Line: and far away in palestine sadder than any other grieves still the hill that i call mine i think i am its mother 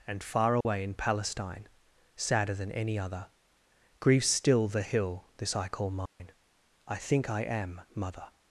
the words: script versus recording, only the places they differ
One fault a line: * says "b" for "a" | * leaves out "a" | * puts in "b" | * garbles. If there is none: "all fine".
* says "this" for "that"
* leaves out "its"